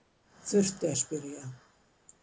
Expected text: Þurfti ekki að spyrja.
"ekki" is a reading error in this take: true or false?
true